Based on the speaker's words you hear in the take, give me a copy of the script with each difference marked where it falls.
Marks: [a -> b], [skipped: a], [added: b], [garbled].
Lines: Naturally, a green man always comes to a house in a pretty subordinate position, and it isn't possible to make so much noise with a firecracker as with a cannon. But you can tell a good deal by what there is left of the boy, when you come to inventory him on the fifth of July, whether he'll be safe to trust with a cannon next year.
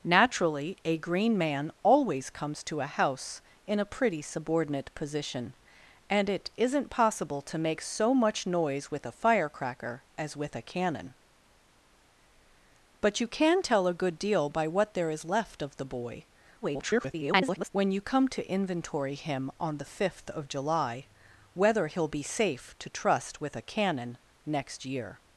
Naturally, a green man always comes to a house in a pretty subordinate position, and it isn't possible to make so much noise with a firecracker as with a cannon. But you can tell a good deal by what there is left of the boy, [garbled] when you come to inventory him on the fifth of July, whether he'll be safe to trust with a cannon next year.